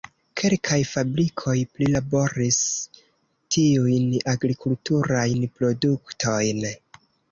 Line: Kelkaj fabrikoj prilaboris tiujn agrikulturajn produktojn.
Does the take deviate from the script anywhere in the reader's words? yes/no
no